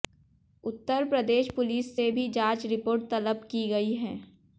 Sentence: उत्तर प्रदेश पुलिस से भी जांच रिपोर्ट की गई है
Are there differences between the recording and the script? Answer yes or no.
yes